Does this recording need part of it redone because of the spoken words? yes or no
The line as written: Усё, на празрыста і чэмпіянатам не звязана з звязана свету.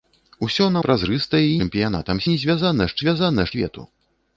no